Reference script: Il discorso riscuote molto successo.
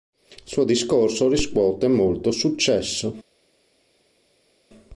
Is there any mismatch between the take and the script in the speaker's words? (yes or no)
yes